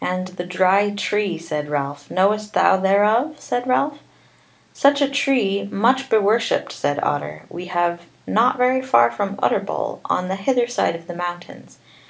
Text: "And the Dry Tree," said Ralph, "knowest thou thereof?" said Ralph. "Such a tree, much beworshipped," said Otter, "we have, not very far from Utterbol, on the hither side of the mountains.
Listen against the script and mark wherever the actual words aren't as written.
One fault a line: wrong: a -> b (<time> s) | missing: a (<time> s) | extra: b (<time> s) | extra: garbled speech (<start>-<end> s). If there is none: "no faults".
no faults